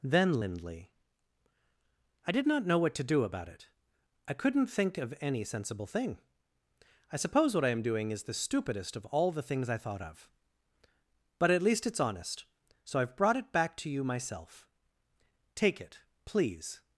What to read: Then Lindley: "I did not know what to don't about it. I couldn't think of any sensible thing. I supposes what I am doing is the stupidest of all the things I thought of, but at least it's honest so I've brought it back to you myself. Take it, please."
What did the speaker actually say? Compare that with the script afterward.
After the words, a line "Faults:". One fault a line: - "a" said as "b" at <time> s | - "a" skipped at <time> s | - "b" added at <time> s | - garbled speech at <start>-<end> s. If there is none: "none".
Then Lindley: "I did not know what to do about it. I couldn't think of any sensible thing. I suppose what I am doing is the stupidest of all the things I thought of, but at least it's honest so I've brought it back to you myself. Take it, please."
Faults:
- "don't" said as "do" at 3.0 s
- "supposes" said as "suppose" at 7.2 s